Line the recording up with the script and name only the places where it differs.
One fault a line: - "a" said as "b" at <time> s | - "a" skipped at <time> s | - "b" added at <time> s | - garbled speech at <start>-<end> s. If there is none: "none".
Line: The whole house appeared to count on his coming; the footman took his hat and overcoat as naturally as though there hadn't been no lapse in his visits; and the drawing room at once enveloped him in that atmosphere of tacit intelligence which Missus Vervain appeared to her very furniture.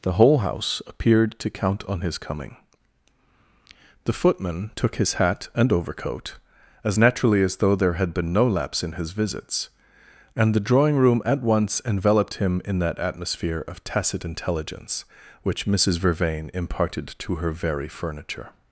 - "hadn't" said as "had" at 7.9 s
- "appeared" said as "imparted" at 16.5 s